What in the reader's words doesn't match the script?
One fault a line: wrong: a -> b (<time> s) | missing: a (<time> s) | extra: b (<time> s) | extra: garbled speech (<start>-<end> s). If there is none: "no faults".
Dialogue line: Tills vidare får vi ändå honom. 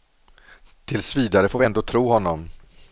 extra: tro (1.8 s)